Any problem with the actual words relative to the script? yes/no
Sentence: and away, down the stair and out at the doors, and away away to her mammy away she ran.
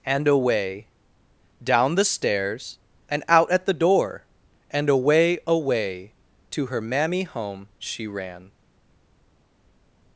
yes